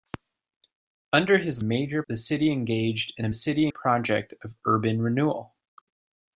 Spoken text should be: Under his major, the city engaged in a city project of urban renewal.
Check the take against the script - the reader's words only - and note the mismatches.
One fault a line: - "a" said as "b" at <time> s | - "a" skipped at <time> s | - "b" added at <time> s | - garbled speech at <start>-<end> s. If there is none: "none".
none